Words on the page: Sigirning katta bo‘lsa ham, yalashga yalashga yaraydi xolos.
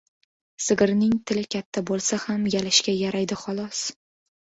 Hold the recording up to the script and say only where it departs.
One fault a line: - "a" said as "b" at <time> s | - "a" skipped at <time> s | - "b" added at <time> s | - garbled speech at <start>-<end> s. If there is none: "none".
- "tili" added at 1.3 s
- "yalashga" skipped at 3.0 s